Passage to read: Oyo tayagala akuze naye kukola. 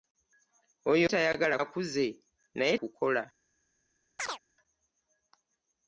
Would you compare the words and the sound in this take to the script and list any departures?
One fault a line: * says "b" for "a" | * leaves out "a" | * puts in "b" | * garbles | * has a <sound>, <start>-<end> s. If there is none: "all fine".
* has a chirp, 4.2-4.4 s